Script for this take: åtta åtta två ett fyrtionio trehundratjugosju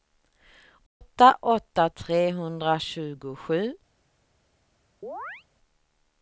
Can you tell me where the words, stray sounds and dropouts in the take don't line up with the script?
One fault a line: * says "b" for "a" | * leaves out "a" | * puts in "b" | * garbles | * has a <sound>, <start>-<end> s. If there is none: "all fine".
* has a dropout, 0.9-1.0 s
* leaves out "två ett fyrtionio"
* has a chirp, 5.0-5.4 s